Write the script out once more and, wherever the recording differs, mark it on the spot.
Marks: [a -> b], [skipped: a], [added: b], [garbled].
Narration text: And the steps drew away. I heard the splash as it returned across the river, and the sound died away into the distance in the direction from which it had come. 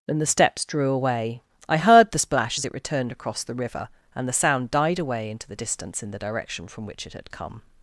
And the steps drew away. I heard the splash as it returned across the river, and the sound died away into the distance in the direction from which it had come.